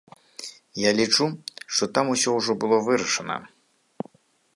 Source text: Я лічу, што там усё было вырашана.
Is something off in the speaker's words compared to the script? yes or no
yes